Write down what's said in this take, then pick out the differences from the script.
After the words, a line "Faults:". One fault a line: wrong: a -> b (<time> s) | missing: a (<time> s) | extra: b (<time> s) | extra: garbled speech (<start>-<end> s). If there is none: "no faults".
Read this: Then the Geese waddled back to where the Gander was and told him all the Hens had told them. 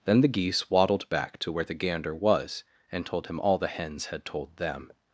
Then the Geese waddled back to where the Gander was and told him all the Hens had told them.
Faults:
no faults